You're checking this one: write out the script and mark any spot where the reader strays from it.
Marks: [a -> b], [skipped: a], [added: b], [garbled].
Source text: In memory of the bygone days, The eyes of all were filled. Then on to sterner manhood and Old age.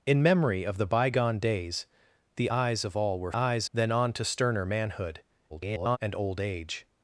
In memory of the bygone days, The eyes of all were [filled. -> eyes] Then on to sterner manhood [garbled] and Old age.